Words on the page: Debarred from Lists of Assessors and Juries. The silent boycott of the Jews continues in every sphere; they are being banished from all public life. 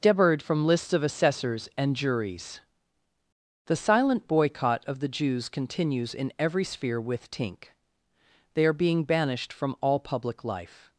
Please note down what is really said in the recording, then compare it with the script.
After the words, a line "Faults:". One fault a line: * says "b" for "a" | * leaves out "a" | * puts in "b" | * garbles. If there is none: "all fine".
Debarred from Lists of Assessors and Juries. The silent boycott of the Jews continues in every sphere; with tink they are being banished from all public life.
Faults:
* puts in "with tink"